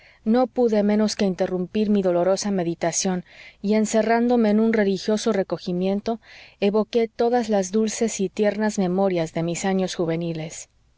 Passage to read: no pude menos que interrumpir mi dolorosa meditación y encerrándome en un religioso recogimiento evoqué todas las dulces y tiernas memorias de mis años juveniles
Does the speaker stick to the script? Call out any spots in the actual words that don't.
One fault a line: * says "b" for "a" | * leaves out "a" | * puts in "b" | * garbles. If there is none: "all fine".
all fine